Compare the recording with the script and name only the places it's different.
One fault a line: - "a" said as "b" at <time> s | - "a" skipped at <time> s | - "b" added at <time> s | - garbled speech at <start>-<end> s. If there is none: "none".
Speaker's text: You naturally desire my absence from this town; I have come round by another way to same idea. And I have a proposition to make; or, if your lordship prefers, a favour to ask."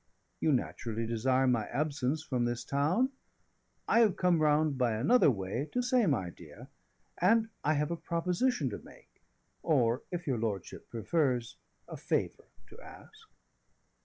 none